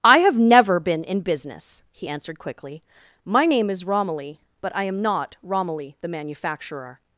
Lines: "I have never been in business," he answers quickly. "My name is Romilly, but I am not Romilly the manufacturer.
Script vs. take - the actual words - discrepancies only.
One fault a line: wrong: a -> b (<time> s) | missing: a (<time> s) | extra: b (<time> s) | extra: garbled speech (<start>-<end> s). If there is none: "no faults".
wrong: answers -> answered (2.1 s)